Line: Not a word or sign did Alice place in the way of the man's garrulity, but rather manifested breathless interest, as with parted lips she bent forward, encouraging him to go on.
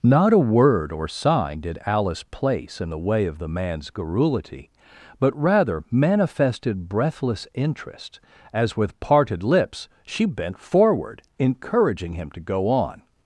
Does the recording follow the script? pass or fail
pass